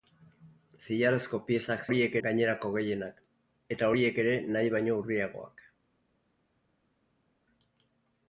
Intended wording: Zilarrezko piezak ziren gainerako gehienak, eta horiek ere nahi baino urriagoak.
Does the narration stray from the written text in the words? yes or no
yes